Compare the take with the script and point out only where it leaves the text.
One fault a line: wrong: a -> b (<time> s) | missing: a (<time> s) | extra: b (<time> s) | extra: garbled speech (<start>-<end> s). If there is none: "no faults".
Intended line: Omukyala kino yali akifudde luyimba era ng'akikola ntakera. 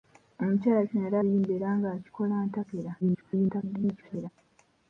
missing: akifudde (1.2 s)
extra: garbled speech (3.0-4.3 s)